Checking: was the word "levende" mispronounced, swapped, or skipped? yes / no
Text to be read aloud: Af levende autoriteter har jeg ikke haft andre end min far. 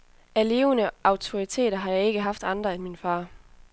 no